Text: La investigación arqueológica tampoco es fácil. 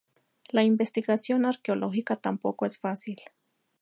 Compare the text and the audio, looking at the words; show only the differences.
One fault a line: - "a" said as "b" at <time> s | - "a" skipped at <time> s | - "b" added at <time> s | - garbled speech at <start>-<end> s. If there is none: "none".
none